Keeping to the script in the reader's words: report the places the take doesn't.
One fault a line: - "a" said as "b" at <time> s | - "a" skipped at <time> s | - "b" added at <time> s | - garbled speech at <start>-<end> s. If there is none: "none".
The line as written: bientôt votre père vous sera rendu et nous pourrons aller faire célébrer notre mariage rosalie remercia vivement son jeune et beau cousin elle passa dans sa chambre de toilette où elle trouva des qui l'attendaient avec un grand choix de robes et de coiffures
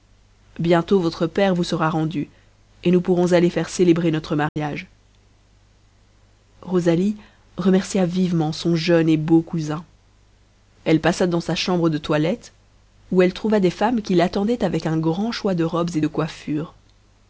- "femmes" added at 13.7 s